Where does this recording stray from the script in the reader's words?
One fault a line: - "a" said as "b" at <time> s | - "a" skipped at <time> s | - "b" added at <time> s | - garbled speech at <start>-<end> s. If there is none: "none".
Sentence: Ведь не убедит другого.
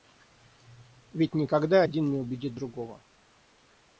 - "никогда один" added at 1.4 s